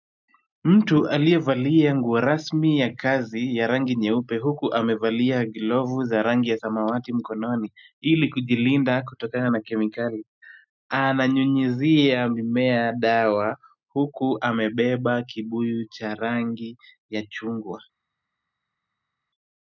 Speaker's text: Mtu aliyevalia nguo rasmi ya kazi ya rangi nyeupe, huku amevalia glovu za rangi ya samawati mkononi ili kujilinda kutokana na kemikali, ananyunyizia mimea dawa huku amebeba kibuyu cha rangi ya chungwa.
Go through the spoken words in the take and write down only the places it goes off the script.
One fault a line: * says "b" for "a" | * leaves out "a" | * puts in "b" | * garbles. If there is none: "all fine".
all fine